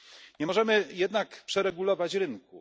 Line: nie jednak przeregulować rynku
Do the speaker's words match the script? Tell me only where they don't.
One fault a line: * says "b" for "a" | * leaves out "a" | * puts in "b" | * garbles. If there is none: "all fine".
* puts in "możemy"